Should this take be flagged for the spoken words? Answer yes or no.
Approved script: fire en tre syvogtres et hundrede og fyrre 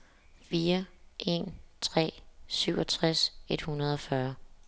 no